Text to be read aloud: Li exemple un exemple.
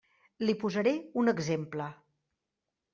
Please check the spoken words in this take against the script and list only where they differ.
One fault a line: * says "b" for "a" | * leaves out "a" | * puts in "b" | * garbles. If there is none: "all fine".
* says "posaré" for "exemple"